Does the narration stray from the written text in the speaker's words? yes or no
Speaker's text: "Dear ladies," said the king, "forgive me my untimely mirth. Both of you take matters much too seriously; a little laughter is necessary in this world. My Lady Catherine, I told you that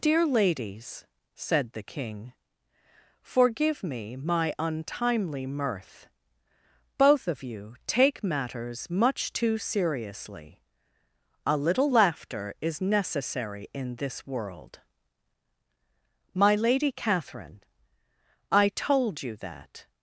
no